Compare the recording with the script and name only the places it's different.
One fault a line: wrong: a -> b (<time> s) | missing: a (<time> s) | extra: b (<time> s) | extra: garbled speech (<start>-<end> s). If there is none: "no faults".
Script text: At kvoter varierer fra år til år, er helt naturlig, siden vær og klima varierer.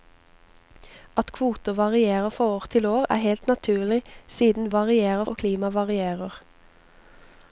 wrong: vær -> varierer (4.7 s)